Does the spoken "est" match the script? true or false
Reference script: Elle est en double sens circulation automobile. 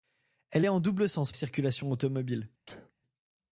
true